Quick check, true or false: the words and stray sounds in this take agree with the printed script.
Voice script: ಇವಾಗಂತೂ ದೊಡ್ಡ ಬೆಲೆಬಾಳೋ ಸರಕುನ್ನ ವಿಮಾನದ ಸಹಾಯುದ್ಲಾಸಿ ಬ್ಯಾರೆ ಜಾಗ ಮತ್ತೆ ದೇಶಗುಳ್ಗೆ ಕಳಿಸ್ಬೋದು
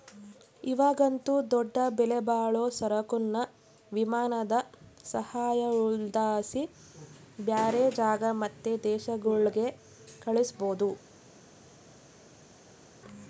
true